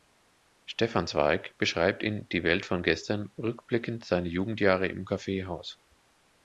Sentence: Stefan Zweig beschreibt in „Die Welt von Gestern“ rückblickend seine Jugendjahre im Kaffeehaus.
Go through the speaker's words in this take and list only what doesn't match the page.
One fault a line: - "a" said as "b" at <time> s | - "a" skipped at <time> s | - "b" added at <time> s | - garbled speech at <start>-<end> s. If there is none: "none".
none